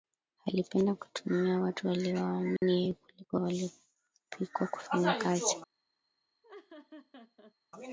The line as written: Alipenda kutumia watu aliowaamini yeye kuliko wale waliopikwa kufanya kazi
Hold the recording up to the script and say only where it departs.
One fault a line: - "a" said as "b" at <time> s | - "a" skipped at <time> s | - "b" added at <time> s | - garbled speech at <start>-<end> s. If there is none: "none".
- "wale" skipped at 3.4 s